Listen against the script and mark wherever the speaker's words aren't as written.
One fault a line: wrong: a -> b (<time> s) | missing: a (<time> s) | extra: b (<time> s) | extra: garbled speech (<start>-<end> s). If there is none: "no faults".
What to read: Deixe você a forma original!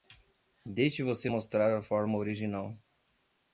extra: mostrar (1.3 s)